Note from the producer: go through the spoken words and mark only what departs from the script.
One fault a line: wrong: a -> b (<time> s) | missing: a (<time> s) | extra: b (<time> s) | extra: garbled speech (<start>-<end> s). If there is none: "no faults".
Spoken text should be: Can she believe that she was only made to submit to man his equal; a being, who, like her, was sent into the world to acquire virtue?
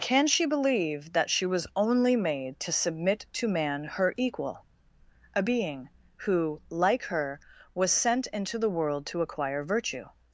wrong: his -> her (3.8 s)